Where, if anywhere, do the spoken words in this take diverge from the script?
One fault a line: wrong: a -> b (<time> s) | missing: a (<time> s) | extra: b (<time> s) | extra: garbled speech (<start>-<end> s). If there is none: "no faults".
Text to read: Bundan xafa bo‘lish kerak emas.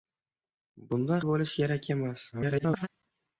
missing: xafa (1.2 s)
extra: garbled speech (2.3-2.9 s)